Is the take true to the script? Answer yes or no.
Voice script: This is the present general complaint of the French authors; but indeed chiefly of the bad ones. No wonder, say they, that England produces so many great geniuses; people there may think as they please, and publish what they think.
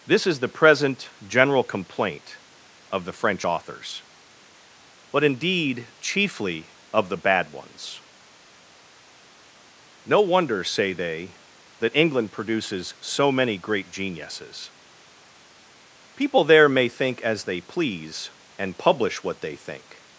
yes